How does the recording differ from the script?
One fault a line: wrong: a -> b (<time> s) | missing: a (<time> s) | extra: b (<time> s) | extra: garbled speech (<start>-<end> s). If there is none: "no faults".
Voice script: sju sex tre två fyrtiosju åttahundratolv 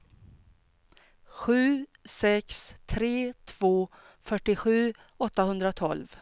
no faults